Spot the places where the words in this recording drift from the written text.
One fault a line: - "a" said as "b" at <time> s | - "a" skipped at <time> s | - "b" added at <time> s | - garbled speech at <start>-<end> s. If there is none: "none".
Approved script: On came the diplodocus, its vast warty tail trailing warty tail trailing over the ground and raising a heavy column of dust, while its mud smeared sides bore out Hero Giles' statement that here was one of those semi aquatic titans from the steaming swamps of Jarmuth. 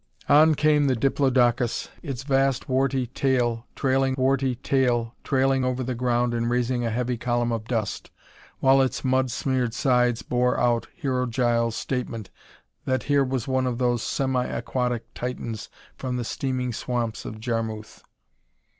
none